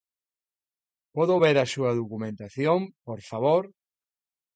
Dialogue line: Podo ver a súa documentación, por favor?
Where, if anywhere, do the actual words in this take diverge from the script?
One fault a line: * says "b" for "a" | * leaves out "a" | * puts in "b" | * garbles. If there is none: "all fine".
all fine